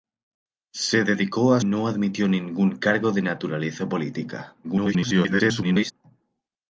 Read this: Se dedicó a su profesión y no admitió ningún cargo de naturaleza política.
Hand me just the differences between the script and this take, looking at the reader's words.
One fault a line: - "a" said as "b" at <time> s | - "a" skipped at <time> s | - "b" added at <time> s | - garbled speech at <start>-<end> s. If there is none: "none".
- "su profesión y" skipped at 1.6 s
- garbled speech at 4.6-5.9 s